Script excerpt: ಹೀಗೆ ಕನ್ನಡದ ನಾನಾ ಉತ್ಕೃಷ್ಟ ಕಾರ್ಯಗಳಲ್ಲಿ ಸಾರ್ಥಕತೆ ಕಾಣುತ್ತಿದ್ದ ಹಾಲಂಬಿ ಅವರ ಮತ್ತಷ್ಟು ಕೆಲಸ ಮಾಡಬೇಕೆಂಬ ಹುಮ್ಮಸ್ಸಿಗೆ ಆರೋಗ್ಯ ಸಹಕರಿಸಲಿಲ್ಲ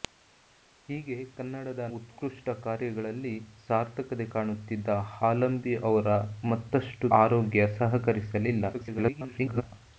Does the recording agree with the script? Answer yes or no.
no